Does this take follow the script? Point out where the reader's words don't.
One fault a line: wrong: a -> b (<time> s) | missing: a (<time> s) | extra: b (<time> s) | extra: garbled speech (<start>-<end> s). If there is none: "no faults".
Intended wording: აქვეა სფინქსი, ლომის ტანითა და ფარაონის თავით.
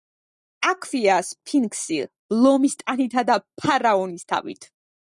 no faults